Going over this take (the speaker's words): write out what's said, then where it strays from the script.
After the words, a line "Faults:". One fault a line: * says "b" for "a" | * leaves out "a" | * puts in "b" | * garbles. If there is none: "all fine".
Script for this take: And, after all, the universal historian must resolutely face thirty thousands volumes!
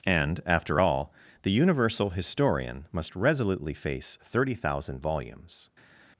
And, after all, the universal historian must resolutely face thirty thousand volumes!
Faults:
* says "thousand" for "thousands"